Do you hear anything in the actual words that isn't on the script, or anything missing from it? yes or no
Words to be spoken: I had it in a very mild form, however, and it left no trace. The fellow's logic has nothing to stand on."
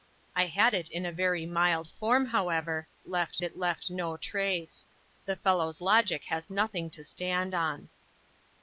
yes